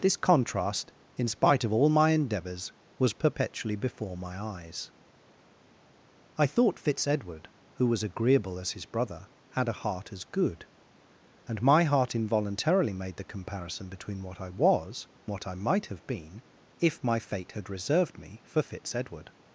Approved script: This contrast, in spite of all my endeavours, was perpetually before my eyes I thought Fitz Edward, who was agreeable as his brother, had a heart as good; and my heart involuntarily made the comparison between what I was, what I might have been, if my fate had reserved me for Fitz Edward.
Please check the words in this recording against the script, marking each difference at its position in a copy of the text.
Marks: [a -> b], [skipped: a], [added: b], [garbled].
This contrast, in spite of all my endeavours, was perpetually before my eyes I thought Fitz Edward, who was agreeable as his brother, had a heart as good; and my heart involuntarily made the comparison between what I was, what I might have been, if my fate had reserved me for Fitz Edward.